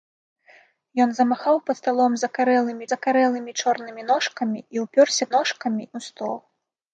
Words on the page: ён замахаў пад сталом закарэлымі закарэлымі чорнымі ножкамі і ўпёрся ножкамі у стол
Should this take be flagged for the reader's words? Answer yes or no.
no